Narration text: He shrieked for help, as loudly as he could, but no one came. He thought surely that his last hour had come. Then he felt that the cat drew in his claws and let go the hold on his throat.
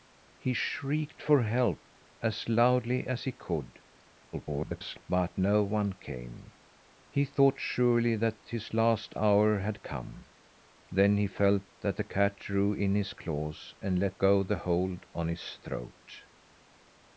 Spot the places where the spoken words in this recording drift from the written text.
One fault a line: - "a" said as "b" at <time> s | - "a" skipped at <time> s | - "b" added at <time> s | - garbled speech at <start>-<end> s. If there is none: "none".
- garbled speech at 4.3-5.0 s